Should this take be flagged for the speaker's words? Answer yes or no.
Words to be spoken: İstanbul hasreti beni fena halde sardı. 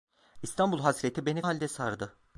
yes